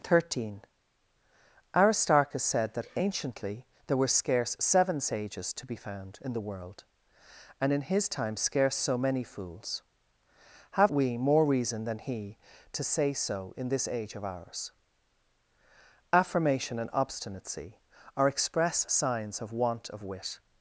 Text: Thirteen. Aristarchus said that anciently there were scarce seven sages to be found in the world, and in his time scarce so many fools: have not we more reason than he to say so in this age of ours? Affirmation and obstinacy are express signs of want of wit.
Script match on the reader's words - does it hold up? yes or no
no